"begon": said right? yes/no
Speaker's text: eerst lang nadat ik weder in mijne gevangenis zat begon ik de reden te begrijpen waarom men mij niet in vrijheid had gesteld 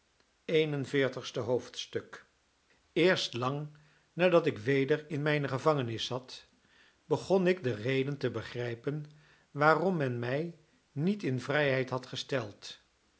yes